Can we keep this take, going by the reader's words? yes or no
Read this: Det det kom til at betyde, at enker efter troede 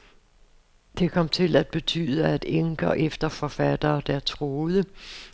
no